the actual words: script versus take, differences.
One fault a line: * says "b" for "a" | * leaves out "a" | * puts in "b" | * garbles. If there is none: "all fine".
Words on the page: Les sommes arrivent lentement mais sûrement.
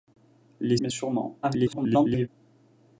* leaves out "sommes arrivent lentement"
* garbles